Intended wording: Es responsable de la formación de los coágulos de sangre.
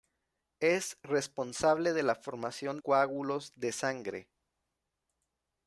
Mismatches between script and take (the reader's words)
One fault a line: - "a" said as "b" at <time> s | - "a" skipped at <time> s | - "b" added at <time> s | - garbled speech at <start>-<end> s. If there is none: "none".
- "de los" skipped at 2.8 s